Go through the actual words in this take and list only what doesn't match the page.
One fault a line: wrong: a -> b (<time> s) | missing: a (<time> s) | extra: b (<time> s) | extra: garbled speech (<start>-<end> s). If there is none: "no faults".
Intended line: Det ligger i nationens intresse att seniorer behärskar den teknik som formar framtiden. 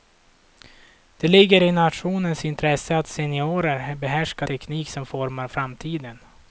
missing: den (4.5 s)